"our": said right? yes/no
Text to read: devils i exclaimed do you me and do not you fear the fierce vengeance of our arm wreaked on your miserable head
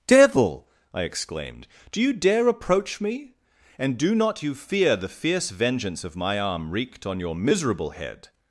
no